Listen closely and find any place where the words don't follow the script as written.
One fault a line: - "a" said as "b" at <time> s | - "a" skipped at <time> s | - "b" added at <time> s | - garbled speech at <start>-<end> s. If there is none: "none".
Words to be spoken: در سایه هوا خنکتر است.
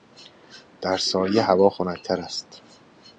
none